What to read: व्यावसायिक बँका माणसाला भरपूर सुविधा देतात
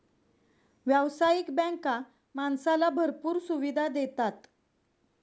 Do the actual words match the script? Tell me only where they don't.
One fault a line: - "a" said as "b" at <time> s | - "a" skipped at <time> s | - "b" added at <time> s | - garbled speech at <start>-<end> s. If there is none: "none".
none